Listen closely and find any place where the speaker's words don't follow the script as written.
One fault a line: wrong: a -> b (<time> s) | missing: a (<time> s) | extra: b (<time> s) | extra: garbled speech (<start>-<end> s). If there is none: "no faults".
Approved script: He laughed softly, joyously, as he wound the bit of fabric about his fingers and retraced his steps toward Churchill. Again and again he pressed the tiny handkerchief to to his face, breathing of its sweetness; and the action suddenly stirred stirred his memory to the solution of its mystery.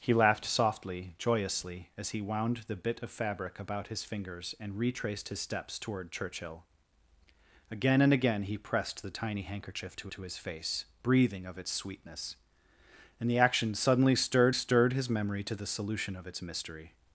no faults